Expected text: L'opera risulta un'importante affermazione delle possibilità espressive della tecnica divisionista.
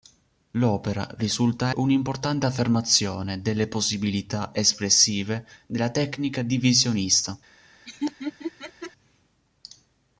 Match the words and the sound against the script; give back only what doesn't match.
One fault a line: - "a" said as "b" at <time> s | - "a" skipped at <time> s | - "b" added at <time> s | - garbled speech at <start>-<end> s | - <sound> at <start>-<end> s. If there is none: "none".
- laugh at 7.9-8.9 s